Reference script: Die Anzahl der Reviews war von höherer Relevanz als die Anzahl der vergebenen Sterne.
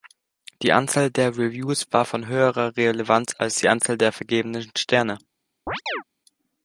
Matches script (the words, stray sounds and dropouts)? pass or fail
fail